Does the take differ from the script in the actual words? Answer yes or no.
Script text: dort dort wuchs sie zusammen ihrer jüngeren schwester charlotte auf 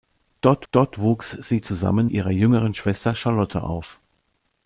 no